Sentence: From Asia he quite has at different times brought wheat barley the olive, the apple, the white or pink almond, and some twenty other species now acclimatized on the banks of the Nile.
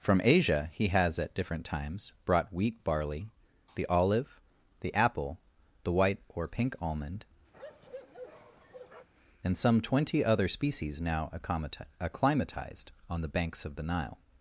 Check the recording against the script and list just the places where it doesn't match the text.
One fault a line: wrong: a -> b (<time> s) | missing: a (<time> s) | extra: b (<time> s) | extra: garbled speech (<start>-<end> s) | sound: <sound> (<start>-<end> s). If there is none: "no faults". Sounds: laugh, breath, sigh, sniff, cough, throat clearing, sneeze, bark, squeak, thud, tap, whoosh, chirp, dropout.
missing: quite (0.9 s)
sound: bark (7.5-9.1 s)